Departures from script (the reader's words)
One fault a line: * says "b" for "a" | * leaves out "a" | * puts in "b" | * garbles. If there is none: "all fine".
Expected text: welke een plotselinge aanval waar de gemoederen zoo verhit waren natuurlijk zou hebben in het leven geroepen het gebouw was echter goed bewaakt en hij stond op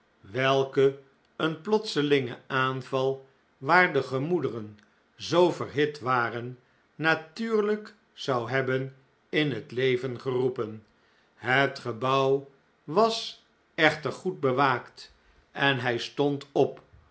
all fine